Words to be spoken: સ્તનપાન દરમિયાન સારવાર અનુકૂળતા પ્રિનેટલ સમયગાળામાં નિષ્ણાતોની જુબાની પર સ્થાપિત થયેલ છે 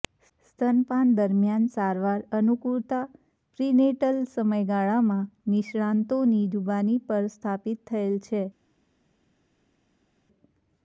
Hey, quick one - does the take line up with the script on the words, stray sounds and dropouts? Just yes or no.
yes